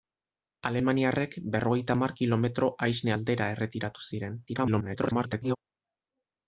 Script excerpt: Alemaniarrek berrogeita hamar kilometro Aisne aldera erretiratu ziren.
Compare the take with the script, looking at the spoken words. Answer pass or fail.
fail